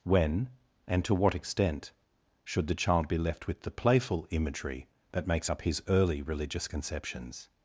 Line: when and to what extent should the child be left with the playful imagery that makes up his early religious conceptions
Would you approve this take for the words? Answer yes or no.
yes